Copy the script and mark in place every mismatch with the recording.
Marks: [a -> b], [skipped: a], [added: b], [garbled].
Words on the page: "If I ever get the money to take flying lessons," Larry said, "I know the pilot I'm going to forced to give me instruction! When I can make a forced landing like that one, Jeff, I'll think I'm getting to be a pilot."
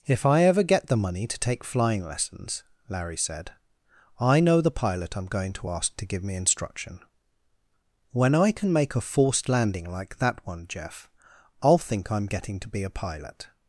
"If I ever get the money to take flying lessons," Larry said, "I know the pilot I'm going to [forced -> ask] to give me instruction! When I can make a forced landing like that one, Jeff, I'll think I'm getting to be a pilot."